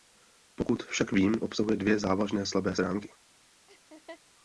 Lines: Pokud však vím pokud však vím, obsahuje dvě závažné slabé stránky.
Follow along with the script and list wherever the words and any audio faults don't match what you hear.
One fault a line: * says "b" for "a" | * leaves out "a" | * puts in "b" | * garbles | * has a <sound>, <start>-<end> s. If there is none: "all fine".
* leaves out "pokud však vím"
* has a laugh, 3.7-4.2 s